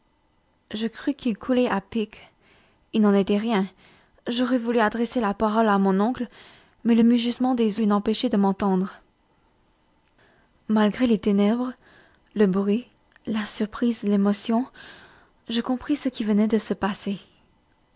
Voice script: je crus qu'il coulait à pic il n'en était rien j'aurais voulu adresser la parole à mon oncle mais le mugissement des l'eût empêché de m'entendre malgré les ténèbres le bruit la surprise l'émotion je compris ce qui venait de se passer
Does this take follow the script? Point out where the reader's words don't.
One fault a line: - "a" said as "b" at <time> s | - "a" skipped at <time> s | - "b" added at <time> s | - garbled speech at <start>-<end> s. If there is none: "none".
none